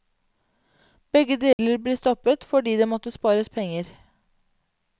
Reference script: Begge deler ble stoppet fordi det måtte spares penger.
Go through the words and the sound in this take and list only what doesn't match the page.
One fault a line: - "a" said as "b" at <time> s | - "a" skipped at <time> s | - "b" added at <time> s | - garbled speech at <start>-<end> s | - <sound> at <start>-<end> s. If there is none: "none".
- dropout at 1.5-1.6 s